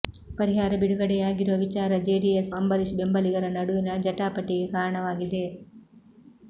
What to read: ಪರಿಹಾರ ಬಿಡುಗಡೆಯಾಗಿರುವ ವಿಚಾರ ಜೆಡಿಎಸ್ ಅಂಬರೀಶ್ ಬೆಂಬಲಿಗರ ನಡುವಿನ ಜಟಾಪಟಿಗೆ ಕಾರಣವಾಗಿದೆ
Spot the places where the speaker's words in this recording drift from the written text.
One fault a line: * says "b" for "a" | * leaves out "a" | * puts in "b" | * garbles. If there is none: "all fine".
all fine